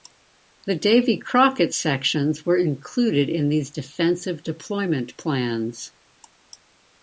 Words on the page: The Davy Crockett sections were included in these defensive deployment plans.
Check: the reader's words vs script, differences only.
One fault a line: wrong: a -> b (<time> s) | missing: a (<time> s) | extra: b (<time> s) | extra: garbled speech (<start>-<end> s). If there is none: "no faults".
no faults